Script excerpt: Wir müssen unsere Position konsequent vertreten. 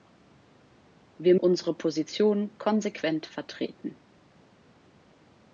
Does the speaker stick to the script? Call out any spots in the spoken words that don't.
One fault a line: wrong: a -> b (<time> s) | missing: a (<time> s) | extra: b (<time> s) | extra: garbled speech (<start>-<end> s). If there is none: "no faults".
missing: müssen (1.4 s)